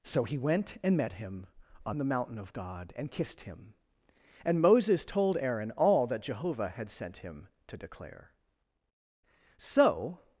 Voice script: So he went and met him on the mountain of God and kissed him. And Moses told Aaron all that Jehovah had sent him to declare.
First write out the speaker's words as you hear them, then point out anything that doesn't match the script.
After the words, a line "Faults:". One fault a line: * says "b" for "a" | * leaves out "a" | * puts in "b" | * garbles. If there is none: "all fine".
So he went and met him on the mountain of God and kissed him. And Moses told Aaron all that Jehovah had sent him to declare. So
Faults:
* puts in "So"